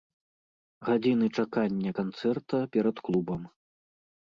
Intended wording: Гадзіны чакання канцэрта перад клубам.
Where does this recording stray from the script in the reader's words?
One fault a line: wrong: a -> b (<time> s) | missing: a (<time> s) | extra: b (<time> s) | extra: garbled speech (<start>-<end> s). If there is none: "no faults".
no faults